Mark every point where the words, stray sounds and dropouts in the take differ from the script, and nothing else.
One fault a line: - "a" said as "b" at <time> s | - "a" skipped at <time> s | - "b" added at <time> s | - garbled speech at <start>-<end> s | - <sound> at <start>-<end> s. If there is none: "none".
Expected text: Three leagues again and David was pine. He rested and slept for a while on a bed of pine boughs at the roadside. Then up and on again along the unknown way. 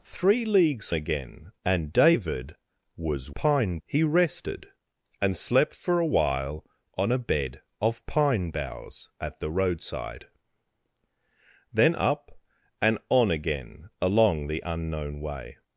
none